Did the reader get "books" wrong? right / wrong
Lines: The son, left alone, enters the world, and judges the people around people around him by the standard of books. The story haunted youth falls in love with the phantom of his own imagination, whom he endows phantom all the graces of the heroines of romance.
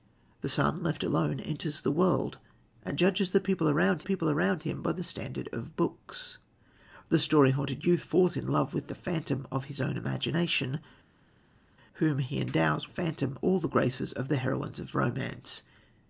right